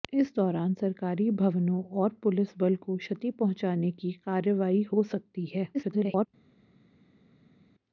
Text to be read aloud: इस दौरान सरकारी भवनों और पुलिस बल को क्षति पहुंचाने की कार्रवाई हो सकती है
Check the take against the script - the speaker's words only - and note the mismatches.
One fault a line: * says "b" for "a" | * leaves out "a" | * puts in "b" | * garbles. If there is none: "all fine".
* garbles